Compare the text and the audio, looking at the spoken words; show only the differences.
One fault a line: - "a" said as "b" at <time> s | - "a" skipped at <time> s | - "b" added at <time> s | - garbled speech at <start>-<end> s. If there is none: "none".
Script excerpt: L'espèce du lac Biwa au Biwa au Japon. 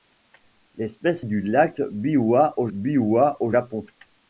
none